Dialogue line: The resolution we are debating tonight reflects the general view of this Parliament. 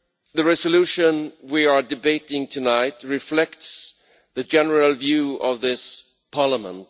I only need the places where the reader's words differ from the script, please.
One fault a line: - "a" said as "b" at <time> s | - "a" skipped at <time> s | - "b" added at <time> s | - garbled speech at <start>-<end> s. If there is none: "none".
none